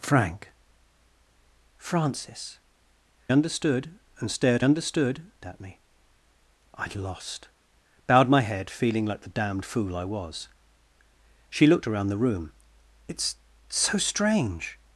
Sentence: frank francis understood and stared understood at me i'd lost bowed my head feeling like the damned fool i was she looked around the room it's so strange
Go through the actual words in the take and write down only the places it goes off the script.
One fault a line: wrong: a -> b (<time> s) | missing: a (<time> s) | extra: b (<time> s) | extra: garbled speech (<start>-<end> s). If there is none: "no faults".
no faults